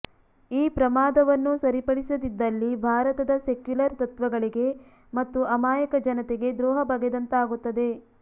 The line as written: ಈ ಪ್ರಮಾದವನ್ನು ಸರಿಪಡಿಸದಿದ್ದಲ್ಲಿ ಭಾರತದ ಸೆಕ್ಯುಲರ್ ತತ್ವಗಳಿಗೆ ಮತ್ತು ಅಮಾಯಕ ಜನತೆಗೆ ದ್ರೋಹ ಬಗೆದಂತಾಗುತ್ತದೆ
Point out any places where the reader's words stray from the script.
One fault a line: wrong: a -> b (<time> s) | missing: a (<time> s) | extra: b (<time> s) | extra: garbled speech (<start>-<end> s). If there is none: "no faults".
no faults